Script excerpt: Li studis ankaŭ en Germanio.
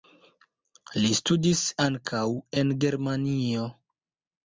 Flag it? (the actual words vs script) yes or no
no